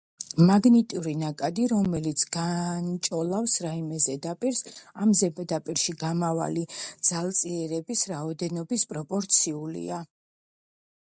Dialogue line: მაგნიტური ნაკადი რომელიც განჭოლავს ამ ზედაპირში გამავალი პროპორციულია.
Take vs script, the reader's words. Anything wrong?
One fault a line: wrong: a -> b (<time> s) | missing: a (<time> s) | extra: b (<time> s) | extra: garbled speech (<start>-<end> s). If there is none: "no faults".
extra: რაიმე ზედაპირს (3.6 s)
extra: ძალწირების რაოდენობის (7.1 s)